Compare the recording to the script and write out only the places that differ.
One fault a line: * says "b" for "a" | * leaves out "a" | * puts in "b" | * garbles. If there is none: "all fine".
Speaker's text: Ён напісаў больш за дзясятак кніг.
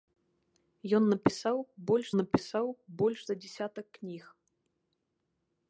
* puts in "напісаў больш"